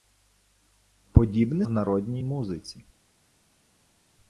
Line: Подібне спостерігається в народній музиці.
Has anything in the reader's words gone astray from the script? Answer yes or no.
yes